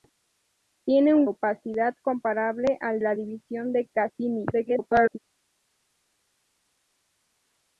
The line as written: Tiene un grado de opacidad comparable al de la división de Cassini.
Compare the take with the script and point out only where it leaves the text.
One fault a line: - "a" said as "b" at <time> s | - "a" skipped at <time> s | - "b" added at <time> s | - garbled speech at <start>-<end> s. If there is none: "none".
- "grado de" skipped at 1.3 s
- "de" skipped at 3.0 s
- garbled speech at 4.5-5.2 s